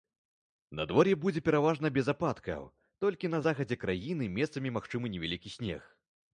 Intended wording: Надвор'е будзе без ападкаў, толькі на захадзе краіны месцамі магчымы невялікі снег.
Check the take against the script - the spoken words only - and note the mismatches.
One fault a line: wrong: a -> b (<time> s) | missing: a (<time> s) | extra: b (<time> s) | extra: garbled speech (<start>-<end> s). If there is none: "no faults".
extra: пераважна (1.5 s)